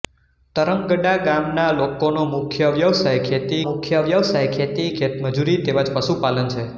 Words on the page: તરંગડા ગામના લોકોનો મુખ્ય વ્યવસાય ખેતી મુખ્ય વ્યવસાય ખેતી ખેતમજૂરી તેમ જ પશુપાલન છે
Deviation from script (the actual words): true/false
false